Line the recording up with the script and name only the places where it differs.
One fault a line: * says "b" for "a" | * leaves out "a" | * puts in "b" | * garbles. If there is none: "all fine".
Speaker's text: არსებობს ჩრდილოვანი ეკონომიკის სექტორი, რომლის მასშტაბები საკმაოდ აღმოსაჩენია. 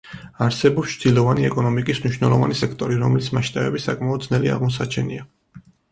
* puts in "მნიშვნელოვანი"
* puts in "ძნელი"